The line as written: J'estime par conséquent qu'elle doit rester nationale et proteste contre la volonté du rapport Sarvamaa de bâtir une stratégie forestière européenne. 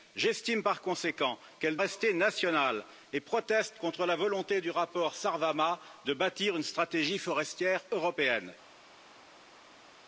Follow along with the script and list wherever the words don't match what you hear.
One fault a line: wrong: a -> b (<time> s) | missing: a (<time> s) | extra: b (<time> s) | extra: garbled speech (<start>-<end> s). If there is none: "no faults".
missing: doit (1.8 s)